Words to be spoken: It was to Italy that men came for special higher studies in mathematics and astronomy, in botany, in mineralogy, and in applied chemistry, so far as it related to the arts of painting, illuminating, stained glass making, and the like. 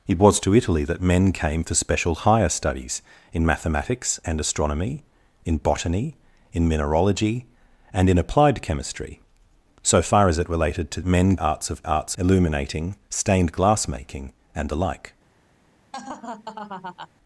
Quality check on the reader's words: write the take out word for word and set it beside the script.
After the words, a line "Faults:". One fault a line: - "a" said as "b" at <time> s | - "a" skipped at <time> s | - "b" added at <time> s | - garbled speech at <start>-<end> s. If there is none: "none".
It was to Italy that men came for special higher studies in mathematics and astronomy, in botany, in mineralogy, and in applied chemistry, so far as it related to men arts of arts, illuminating, stained glass making, and the like.
Faults:
- "the" said as "men" at 11.0 s
- "painting" said as "arts" at 11.8 s